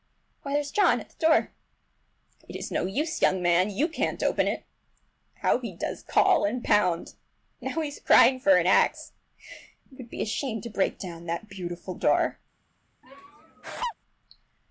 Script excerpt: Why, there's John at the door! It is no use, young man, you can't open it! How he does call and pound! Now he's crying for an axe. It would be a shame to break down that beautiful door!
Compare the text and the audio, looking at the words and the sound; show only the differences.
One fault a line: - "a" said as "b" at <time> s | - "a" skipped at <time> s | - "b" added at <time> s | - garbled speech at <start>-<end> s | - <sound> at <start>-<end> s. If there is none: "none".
- laugh at 13.0-13.9 s